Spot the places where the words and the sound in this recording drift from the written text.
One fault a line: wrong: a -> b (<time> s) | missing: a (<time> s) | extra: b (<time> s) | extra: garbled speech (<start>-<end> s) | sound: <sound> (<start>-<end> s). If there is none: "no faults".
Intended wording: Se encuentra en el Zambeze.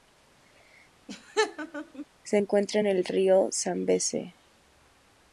sound: laugh (1.1-2.1 s)
extra: Río (3.0 s)